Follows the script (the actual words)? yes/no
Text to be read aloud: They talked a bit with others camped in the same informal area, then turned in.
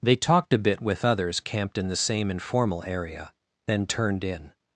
yes